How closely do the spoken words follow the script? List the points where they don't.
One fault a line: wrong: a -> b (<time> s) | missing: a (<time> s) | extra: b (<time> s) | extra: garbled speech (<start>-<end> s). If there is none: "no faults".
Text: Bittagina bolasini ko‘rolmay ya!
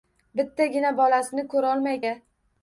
no faults